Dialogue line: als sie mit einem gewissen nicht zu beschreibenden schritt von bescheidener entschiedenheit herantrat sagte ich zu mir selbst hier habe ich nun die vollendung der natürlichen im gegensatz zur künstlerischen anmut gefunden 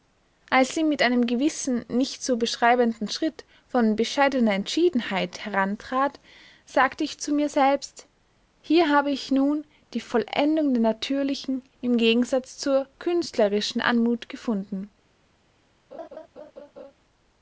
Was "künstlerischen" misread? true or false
false